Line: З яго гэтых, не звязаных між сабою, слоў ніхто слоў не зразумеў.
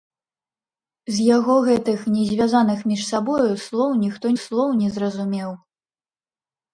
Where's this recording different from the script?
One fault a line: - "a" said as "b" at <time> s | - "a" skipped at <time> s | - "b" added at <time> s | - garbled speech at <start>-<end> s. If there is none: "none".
none